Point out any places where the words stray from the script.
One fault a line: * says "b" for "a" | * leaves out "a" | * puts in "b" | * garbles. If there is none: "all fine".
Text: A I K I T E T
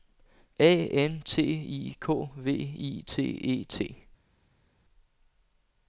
* puts in "N T"
* puts in "V"